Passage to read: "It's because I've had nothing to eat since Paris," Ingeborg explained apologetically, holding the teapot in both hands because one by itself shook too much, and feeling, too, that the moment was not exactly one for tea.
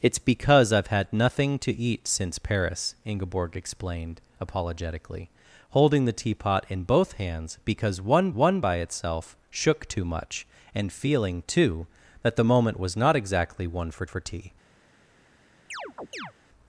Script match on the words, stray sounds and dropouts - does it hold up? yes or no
no